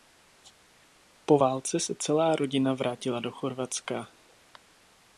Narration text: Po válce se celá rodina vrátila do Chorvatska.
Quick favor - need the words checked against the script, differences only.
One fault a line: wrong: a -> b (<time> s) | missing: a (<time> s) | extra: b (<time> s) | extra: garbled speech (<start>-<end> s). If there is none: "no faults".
no faults